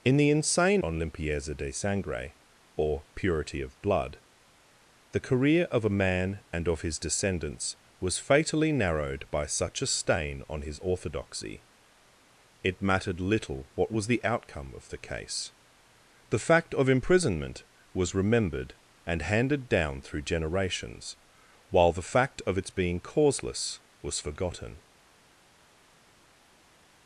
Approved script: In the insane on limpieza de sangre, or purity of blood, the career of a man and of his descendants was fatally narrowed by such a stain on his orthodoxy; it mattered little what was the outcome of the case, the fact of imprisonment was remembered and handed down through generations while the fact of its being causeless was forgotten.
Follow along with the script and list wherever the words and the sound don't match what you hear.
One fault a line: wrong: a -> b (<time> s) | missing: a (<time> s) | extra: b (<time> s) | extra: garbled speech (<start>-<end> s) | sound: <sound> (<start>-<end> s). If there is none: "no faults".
no faults